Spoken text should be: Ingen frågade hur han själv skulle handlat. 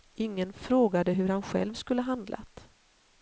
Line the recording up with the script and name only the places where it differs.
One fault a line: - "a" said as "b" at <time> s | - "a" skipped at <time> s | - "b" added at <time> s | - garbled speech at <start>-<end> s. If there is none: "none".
none